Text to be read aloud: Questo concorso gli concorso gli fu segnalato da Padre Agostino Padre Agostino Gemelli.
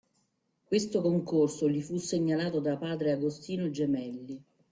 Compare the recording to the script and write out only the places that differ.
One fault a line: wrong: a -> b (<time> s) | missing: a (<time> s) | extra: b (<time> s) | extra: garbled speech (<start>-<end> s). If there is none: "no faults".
missing: concorso gli (1.8 s)
missing: Padre Agostino (3.7 s)